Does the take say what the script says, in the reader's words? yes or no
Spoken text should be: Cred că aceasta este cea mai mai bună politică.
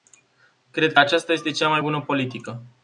no